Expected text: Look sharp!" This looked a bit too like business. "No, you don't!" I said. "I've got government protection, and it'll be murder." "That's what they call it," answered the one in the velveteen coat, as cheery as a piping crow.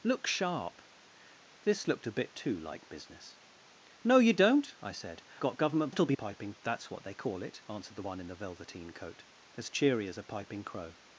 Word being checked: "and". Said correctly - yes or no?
no